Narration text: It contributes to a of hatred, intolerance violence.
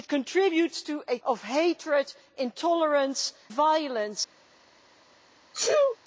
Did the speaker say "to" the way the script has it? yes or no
yes